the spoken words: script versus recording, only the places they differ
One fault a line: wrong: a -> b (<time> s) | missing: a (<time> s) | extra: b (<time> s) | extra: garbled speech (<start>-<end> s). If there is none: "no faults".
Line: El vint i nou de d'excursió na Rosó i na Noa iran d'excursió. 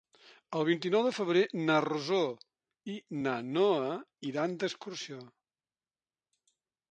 wrong: d'excursió -> febrer (1.2 s)